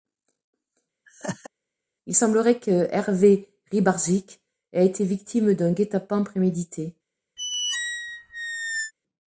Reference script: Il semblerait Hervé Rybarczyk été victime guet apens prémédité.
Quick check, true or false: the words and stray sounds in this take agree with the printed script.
false